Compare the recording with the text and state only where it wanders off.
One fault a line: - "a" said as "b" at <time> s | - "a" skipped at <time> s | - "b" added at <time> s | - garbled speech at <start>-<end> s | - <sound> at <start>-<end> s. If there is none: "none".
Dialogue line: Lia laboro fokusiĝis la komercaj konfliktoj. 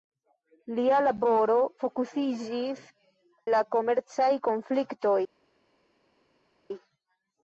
none